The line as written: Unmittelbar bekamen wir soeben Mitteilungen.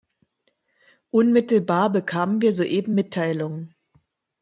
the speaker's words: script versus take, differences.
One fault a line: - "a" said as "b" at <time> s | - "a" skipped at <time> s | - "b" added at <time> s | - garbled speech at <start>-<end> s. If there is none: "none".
none